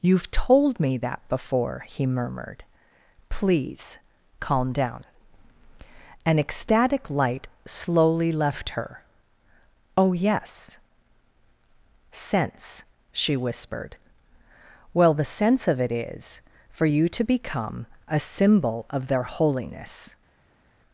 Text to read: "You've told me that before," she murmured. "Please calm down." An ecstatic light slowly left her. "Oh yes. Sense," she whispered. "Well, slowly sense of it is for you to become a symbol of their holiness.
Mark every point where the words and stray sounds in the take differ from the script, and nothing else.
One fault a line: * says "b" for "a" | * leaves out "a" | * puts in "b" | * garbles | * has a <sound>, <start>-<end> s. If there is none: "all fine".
* says "he" for "she"
* says "the" for "slowly"